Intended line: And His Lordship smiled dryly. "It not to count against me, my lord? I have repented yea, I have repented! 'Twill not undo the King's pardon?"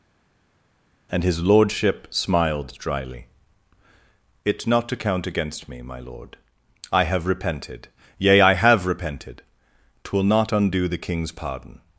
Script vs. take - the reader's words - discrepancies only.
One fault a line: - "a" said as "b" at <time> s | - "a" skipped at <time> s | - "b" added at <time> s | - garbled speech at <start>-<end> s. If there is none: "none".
none